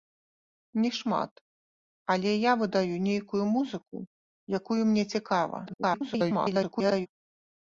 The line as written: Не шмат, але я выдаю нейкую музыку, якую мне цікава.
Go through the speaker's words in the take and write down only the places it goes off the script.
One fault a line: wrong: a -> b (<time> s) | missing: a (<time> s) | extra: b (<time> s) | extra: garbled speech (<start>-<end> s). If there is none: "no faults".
extra: garbled speech (5.7-7.1 s)